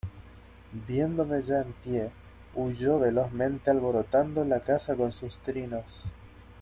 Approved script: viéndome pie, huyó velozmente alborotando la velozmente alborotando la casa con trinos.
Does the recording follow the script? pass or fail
fail